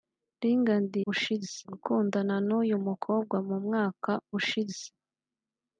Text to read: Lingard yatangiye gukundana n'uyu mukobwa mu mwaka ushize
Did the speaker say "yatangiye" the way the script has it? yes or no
no